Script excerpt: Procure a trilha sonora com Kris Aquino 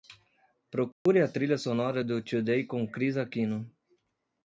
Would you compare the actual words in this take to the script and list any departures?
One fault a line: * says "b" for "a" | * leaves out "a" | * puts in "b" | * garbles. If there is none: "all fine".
* puts in "do Today"